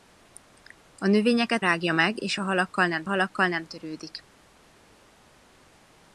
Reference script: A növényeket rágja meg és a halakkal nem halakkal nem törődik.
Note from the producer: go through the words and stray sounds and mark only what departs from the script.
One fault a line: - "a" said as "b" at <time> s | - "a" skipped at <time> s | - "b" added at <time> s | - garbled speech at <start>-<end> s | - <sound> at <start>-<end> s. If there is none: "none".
none